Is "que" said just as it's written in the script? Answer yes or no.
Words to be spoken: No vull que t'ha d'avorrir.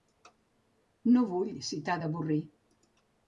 no